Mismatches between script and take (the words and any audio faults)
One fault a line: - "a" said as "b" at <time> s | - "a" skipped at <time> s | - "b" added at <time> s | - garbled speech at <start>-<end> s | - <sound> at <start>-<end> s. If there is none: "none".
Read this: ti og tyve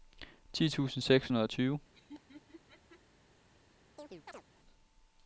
- "tusind seks hundrede" added at 0.7 s
- laugh at 1.9-3.0 s
- chirp at 4.0-4.4 s